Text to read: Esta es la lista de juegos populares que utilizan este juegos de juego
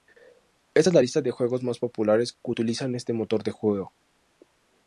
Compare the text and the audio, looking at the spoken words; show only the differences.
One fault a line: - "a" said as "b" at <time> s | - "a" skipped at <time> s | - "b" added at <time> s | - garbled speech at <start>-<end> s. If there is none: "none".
- "más" added at 1.6 s
- "juegos" said as "motor" at 3.1 s